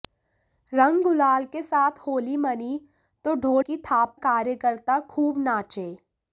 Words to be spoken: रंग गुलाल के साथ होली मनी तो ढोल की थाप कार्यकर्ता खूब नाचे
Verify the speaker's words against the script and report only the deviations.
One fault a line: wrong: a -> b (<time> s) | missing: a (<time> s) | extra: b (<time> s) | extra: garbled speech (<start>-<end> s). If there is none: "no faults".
no faults